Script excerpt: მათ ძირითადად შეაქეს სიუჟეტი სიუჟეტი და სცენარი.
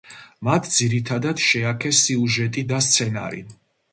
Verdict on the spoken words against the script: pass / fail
fail